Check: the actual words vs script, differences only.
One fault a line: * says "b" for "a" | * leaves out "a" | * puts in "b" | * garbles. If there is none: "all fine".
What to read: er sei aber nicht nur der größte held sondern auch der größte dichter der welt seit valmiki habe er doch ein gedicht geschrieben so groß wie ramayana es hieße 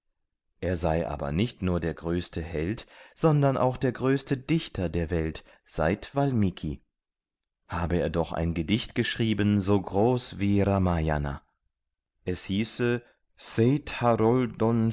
all fine